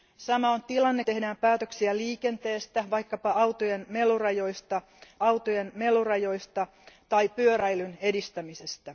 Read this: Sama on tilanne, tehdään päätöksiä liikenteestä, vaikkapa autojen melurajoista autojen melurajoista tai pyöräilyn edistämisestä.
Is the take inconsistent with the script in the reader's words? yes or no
no